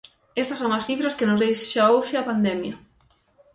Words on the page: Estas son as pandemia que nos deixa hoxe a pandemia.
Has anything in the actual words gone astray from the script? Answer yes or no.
yes